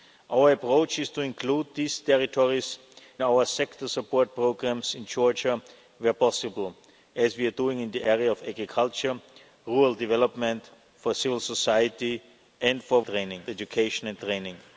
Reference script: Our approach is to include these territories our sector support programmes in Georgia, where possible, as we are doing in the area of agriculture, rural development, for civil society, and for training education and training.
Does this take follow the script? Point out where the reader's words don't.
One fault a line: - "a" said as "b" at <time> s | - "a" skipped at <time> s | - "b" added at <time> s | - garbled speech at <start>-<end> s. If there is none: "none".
none